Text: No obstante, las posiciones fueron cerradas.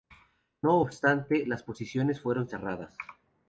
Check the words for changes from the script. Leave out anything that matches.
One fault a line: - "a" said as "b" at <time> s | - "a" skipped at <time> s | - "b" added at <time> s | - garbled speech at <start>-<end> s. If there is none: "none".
none